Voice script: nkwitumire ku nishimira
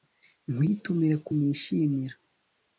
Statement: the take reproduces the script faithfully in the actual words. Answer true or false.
true